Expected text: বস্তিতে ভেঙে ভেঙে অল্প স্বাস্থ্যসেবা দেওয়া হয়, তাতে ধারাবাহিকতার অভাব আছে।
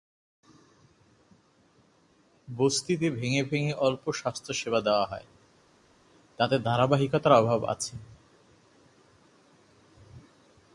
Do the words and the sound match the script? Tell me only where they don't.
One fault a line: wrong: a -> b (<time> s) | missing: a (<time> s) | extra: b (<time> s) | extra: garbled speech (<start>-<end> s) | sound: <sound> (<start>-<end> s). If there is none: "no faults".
no faults